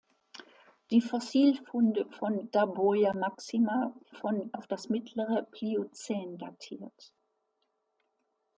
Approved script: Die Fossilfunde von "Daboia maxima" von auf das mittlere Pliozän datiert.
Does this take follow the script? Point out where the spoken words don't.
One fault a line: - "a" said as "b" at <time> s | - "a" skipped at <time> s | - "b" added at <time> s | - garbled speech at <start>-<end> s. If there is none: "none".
none